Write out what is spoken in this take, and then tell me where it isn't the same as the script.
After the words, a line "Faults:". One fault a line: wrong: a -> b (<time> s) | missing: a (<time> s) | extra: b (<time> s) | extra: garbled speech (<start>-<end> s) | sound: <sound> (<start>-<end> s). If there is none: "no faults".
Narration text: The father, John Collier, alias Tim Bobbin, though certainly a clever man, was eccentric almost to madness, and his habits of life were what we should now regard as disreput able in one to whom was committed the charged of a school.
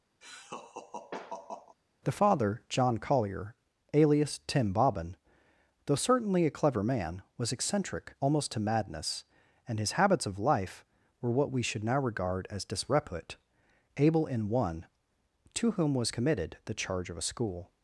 The father, John Collier, alias Tim Bobbin, though certainly a clever man, was eccentric almost to madness, and his habits of life were what we should now regard as disreput able in one to whom was committed the charge of a school.
Faults:
sound: laugh (0.2-1.8 s)
wrong: charged -> charge (16.7 s)